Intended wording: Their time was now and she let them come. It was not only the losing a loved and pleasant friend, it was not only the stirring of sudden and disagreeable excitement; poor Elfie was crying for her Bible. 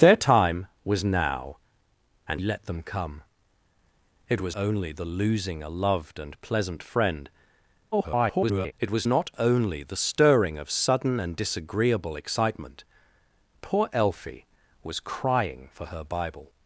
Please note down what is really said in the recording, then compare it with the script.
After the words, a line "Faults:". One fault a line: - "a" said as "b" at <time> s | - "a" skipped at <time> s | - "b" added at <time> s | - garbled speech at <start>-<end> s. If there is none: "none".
Their time was now and let them come. It was only the losing a loved and pleasant friend, [garbled] it was not only the stirring of sudden and disagreeable excitement; poor Elfie was crying for her Bible.
Faults:
- "she" skipped at 2.4 s
- "not" skipped at 4.6 s
- garbled speech at 7.9-8.7 s